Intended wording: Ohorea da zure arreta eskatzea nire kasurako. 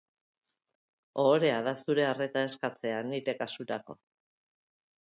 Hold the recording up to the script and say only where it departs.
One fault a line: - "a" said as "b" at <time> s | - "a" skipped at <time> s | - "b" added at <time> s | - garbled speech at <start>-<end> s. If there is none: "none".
none